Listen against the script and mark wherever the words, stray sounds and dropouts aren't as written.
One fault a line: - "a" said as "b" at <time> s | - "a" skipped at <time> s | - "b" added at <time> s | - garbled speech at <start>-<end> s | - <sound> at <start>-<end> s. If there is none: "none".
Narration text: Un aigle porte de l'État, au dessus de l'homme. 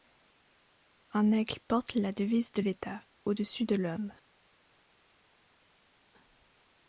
- "la devise" added at 1.9 s